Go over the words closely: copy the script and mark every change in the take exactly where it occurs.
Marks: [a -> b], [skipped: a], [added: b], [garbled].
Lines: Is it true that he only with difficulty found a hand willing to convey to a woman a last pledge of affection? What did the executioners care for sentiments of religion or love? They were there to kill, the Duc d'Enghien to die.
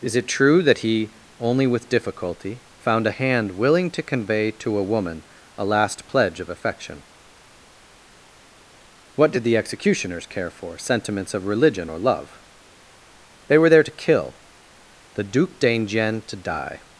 Is it true that he only with difficulty found a hand willing to convey to a woman a last pledge of affection? What did the executioners care for sentiments of religion or love? They were there to kill, the Duc d'Enghien to die.